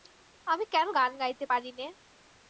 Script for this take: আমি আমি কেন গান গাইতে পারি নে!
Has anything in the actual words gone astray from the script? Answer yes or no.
yes